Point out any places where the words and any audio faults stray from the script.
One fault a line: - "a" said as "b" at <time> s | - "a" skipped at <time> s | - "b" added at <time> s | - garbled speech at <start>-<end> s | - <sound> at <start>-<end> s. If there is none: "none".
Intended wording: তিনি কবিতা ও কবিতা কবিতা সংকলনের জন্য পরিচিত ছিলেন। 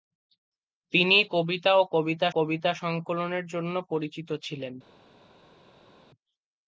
none